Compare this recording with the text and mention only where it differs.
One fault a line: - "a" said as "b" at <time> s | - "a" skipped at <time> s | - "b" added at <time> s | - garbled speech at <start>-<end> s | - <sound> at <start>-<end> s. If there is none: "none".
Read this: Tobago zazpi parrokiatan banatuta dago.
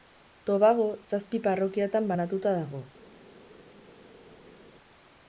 none